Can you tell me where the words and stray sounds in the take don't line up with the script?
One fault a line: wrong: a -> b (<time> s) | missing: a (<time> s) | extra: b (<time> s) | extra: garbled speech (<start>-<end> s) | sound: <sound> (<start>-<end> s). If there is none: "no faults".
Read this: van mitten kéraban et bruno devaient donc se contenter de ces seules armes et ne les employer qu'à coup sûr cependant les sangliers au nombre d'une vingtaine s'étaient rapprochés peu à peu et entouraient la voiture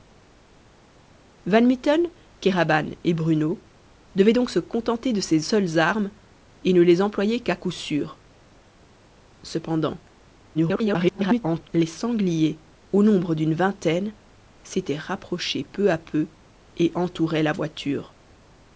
extra: garbled speech (10.5-11.7 s)